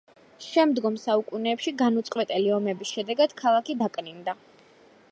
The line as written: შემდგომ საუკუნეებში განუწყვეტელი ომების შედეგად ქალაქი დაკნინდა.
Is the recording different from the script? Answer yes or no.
no